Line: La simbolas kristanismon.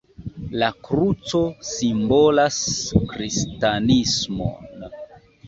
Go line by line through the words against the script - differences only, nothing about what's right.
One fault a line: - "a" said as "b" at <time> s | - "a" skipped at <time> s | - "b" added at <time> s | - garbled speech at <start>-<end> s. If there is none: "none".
- "kruco" added at 0.8 s